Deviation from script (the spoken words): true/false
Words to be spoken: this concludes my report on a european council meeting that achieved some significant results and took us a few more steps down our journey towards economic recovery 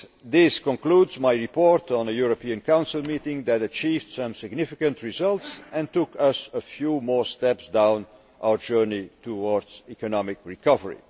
false